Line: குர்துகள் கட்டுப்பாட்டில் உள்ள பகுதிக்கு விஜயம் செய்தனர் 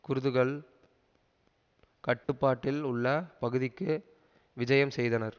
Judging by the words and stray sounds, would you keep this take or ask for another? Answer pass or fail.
fail